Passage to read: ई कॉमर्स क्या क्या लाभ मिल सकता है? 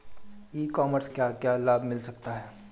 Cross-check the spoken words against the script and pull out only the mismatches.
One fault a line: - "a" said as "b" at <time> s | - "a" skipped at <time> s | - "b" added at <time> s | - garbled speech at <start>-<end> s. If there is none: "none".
none